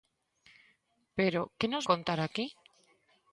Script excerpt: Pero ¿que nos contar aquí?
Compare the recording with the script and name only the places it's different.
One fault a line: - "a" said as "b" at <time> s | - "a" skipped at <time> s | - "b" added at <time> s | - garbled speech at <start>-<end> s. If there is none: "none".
none